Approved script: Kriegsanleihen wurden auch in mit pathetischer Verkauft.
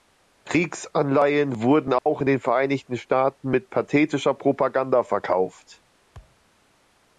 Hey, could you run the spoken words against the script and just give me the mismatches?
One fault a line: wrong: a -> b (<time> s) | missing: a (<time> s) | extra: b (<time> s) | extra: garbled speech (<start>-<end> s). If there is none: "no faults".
extra: den Vereinigten Staaten (2.3 s)
extra: Propaganda (4.3 s)